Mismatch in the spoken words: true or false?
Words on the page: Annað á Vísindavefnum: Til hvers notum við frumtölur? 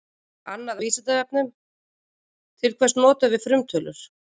false